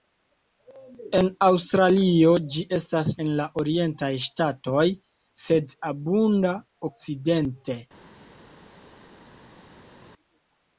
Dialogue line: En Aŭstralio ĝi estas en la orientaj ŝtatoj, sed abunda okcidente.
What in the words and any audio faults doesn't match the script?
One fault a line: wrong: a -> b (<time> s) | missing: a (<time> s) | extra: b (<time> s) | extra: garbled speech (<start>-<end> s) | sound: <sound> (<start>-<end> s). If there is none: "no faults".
no faults